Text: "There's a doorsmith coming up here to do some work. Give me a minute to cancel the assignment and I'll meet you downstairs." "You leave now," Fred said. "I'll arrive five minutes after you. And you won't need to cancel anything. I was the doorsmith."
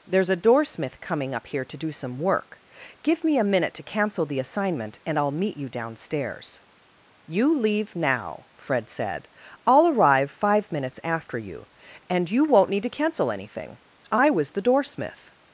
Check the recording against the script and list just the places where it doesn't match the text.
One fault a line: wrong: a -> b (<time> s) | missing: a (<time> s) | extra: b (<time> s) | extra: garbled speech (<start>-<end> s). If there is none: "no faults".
no faults